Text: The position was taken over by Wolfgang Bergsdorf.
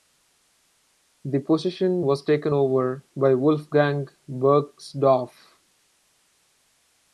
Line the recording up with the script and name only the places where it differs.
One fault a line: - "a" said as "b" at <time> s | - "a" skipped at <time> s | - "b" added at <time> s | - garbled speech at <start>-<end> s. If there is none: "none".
none